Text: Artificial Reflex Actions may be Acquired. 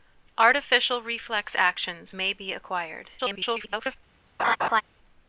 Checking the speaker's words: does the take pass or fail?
fail